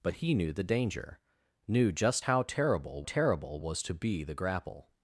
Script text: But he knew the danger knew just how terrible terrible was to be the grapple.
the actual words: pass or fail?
pass